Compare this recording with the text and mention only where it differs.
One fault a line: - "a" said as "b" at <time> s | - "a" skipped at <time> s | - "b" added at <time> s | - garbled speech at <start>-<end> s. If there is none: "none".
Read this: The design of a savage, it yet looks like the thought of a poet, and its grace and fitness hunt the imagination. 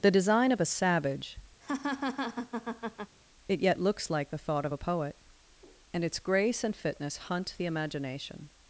none